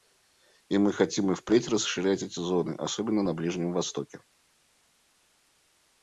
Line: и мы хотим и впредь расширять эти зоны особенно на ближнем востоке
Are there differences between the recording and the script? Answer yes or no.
no